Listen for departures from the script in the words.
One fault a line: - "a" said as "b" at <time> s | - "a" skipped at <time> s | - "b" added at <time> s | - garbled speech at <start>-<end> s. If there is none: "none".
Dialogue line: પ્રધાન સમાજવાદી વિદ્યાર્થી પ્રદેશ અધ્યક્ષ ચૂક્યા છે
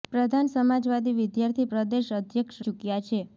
none